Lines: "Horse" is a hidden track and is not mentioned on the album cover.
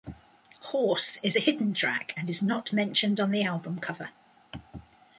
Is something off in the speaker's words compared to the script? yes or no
no